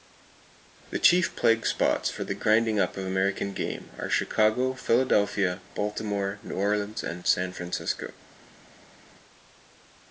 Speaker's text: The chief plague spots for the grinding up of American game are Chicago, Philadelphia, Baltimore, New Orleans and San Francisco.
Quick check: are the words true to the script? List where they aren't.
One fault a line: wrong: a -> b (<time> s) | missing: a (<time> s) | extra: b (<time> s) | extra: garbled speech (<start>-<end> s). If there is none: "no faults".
no faults